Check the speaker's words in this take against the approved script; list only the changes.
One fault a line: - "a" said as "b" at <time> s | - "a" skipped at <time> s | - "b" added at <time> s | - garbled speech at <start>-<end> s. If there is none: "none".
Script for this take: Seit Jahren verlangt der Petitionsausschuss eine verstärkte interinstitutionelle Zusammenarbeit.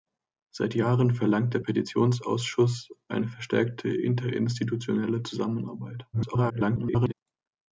- garbled speech at 6.1-7.1 s